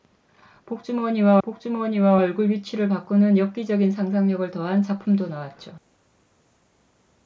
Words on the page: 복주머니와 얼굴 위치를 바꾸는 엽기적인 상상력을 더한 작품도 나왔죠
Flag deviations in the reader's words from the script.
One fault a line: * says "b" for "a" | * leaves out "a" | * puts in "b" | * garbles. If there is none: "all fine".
* puts in "복주머니와"